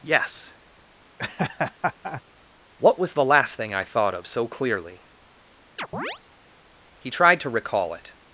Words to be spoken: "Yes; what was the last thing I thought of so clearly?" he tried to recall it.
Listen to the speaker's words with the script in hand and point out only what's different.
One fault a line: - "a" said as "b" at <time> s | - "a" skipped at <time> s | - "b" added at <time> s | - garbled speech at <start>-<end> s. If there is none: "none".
none